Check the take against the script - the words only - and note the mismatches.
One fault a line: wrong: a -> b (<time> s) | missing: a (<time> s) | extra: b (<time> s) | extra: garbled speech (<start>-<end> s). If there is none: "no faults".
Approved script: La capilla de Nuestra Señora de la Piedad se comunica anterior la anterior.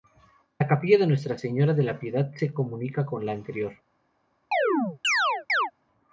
wrong: anterior -> con (3.0 s)